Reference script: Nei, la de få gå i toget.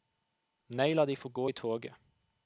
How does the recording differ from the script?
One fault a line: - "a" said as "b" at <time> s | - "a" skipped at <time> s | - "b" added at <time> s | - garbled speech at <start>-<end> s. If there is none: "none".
none